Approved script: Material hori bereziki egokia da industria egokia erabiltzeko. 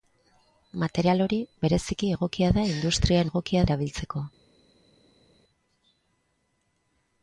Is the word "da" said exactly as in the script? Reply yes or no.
yes